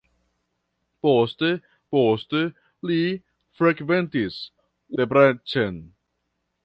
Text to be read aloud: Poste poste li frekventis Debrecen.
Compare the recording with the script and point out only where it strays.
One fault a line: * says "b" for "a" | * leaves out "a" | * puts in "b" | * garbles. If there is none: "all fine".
all fine